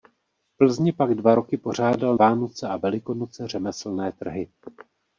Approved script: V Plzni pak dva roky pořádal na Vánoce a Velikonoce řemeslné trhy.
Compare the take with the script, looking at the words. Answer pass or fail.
fail